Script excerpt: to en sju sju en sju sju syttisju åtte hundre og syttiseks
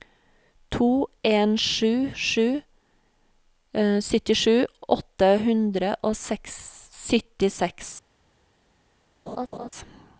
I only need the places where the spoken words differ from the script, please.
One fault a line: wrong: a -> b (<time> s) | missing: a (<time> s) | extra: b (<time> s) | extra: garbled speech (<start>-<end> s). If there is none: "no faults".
missing: en sju sju (2.6 s)